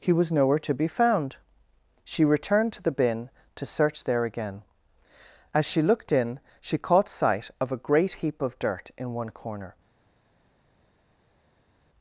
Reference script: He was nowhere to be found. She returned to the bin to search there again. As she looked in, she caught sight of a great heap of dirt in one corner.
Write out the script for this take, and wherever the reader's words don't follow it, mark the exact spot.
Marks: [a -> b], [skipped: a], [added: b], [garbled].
He was nowhere to be found. She returned to the bin to search there again. As she looked in, she caught sight of a great heap of dirt in one corner.